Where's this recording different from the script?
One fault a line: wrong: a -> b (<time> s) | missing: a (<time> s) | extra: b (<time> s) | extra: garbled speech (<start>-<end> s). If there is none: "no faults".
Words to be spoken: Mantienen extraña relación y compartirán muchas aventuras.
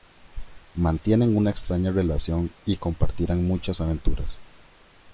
extra: una (1.4 s)